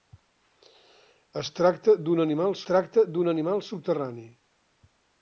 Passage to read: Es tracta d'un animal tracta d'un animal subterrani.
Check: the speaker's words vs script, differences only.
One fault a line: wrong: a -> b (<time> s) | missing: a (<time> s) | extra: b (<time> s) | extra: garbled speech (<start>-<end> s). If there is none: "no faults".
no faults